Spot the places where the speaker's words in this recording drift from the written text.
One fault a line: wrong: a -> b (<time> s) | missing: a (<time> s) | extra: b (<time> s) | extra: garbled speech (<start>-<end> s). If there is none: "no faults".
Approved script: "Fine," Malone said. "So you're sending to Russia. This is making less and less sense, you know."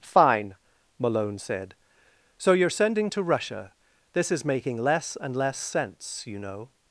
no faults